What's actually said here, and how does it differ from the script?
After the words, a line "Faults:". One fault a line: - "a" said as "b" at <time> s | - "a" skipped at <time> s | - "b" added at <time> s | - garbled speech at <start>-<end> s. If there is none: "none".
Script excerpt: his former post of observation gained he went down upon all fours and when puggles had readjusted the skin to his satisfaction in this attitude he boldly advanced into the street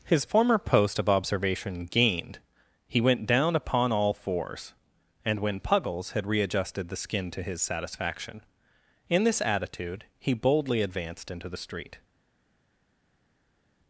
his former post of observation gained he went down upon all fours and when puggles had readjusted the skin to his satisfaction in this attitude he boldly advanced into the street
Faults:
none